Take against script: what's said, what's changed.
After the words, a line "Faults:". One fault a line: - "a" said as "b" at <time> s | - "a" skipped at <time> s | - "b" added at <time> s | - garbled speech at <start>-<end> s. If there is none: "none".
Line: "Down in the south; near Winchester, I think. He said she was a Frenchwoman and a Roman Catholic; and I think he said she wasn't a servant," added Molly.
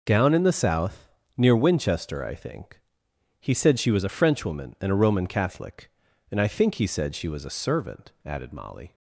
"Down in the south; near Winchester, I think. He said she was a Frenchwoman and a Roman Catholic; and I think he said she was a servant," added Molly.
Faults:
- "wasn't" said as "was" at 7.3 s